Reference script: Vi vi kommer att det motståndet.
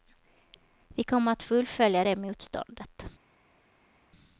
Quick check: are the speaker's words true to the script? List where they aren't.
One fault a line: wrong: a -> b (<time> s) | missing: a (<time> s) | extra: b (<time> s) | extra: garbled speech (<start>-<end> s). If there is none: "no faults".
missing: vi (1.0 s)
extra: fullfölja (1.4 s)